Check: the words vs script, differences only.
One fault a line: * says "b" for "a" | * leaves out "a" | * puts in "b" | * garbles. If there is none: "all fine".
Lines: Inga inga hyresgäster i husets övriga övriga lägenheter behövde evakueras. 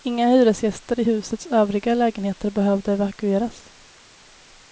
* leaves out "inga"
* leaves out "övriga"